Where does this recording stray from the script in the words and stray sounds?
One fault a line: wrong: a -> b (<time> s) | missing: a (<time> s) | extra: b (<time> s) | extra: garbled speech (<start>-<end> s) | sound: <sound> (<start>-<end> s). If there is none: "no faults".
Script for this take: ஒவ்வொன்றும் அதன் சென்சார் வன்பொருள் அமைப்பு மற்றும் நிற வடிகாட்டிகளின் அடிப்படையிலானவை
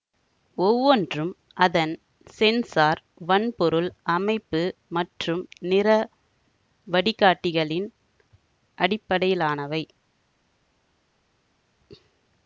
no faults